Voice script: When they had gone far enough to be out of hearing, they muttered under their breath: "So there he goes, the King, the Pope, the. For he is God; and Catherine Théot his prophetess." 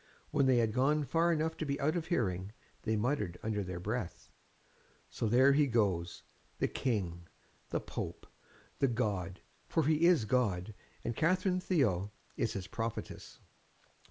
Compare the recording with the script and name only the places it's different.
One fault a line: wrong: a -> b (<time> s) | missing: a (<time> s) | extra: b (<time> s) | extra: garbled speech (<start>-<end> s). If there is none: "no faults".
extra: God (8.9 s)
extra: is (12.4 s)